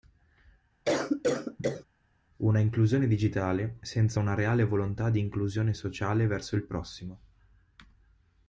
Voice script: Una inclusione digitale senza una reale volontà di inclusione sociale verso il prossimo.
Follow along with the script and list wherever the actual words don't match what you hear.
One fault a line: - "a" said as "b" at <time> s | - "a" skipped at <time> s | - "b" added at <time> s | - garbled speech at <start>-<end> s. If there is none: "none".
none